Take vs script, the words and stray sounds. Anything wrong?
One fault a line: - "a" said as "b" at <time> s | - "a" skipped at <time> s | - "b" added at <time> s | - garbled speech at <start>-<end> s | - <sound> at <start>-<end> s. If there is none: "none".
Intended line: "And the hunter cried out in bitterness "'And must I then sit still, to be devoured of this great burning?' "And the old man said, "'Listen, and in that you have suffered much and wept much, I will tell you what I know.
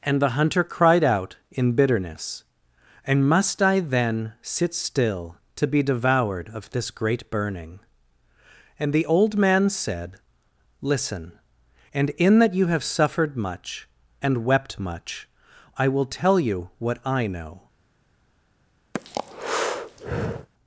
- breath at 18.9-20.5 s